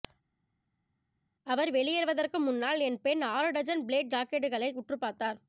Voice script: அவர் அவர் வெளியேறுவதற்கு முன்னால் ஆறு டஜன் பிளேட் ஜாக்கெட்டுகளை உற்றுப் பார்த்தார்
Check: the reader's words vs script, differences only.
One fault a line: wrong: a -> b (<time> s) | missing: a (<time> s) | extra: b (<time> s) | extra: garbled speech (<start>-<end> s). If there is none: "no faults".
missing: அவர் (1.7 s)
extra: என் பெண் (2.8 s)